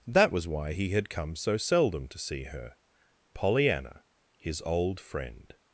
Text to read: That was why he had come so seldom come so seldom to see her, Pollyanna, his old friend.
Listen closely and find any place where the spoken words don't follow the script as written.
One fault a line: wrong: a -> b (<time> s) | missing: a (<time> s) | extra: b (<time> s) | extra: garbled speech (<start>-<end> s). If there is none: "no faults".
missing: come so seldom (2.1 s)